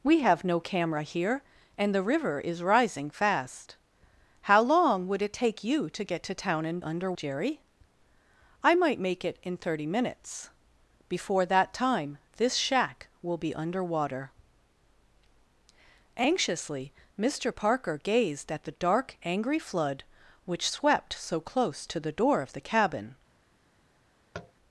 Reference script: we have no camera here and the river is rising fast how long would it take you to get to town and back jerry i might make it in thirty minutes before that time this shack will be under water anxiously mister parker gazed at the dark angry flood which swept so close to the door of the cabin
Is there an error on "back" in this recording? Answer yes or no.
yes